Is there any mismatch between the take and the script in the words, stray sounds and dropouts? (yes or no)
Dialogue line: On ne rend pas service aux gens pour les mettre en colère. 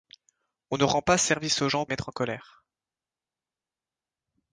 yes